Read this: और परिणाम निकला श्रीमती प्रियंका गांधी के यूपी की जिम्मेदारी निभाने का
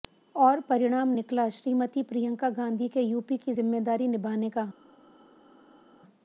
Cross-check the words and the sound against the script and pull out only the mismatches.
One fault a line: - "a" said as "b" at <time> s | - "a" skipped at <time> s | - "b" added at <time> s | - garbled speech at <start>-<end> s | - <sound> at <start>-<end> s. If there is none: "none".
none